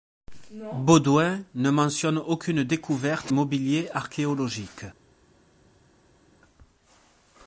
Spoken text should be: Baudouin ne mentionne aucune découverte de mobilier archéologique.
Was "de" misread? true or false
true